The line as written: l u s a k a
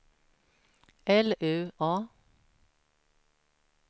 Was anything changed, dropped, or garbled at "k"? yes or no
yes